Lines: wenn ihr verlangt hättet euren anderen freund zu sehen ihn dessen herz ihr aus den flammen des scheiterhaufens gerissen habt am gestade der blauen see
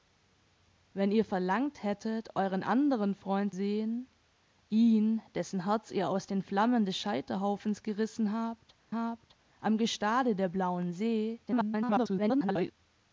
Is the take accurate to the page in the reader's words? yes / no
no